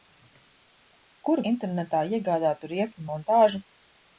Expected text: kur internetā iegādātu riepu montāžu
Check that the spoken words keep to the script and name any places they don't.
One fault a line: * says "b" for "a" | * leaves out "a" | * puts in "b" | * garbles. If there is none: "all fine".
all fine